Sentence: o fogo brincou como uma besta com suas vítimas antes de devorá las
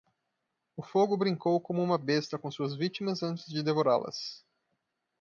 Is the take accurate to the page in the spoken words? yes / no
yes